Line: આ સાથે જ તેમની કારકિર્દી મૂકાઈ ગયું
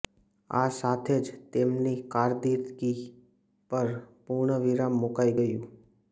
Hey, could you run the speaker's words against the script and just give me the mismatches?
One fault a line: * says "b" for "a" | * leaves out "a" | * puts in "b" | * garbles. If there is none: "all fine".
* puts in "પર પૂર્ણવિરામ"